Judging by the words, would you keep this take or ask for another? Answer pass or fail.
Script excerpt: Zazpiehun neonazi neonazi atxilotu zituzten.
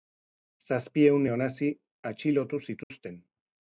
fail